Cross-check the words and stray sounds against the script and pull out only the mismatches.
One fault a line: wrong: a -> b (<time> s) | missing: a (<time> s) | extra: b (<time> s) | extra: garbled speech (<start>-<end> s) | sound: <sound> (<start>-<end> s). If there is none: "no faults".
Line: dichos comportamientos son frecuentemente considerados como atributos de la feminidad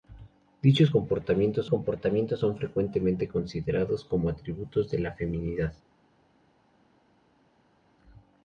extra: comportamientos (1.6 s)